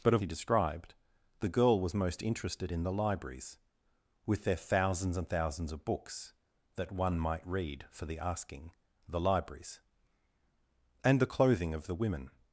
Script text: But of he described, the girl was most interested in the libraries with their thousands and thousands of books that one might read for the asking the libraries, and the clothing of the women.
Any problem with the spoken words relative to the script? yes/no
no